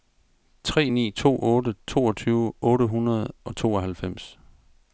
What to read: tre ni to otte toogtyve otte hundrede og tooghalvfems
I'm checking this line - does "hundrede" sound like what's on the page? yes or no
yes